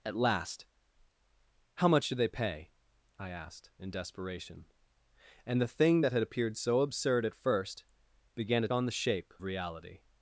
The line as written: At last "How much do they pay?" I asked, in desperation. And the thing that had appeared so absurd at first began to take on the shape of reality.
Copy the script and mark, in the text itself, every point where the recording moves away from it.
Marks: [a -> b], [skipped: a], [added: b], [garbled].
At last "How much do they pay?" I asked, in desperation. And the thing that had appeared so absurd at first began to [skipped: take] on the shape [skipped: of] reality.